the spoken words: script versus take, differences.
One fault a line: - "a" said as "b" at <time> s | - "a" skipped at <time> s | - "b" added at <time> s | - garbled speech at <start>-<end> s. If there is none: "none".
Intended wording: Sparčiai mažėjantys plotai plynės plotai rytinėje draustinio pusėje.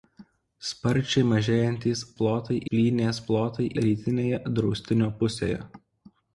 none